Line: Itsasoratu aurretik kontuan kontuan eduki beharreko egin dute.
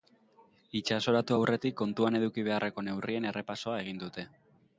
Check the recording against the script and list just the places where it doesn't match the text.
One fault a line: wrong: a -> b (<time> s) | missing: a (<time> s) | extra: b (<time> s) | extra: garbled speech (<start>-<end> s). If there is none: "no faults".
missing: kontuan (2.2 s)
extra: neurrien errepasoa (2.9 s)